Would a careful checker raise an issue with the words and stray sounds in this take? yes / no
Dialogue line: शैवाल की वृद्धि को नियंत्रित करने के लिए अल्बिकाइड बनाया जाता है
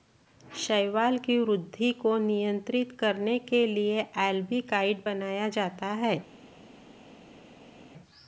no